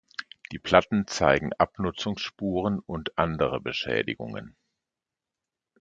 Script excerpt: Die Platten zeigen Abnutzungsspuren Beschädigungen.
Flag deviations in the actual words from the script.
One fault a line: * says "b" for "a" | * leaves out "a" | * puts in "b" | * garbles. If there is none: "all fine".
* puts in "und andere"